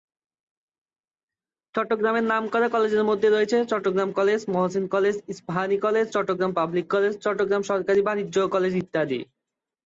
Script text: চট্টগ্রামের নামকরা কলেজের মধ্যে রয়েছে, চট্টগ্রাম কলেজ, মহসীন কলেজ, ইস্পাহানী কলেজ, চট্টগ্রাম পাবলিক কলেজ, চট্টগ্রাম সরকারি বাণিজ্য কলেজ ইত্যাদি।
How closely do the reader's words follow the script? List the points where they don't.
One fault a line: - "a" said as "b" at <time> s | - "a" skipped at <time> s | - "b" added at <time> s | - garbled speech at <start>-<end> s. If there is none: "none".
none